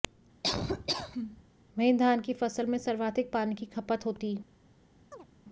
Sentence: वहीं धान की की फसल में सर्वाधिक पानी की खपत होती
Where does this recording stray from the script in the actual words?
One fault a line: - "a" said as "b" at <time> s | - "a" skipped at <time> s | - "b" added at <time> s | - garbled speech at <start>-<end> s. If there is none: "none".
- "की" skipped at 2.3 s